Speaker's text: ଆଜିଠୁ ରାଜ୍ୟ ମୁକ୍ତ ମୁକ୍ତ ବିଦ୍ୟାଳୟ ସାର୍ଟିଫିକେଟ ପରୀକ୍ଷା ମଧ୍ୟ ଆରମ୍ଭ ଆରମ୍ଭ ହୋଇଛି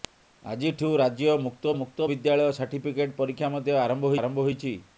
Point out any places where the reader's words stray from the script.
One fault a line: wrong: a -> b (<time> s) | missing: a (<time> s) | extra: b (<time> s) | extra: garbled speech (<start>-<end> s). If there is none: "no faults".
no faults